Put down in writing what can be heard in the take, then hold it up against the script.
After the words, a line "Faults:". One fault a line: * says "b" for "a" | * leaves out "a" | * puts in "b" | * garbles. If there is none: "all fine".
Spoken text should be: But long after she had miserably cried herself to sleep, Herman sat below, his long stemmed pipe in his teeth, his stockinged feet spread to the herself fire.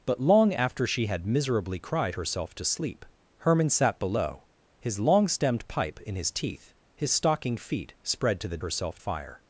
But long after she had miserably cried herself to sleep, Herman sat below, his long stemmed pipe in his teeth, his stockinged feet spread to the herself fire.
Faults:
all fine